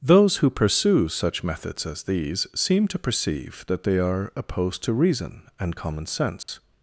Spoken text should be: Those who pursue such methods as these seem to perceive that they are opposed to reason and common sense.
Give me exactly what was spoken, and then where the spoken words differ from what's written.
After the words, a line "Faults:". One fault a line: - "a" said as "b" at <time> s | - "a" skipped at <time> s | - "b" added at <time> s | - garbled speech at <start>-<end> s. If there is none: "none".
Those who pursue such methods as these seem to perceive that they are opposed to reason and common sense.
Faults:
none